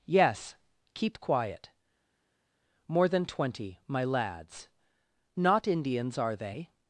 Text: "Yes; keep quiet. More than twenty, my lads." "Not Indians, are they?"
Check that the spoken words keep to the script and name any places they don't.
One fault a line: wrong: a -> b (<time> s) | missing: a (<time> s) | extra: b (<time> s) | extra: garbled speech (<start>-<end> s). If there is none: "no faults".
no faults